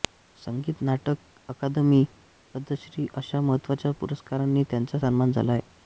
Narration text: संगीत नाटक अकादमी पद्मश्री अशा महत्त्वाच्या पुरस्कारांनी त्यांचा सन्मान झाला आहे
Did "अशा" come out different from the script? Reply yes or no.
no